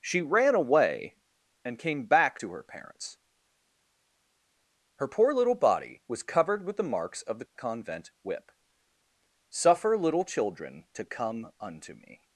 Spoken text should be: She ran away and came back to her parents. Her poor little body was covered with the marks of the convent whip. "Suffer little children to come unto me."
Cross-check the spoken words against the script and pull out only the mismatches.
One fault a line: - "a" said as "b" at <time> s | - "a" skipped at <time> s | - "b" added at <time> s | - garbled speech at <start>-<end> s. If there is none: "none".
none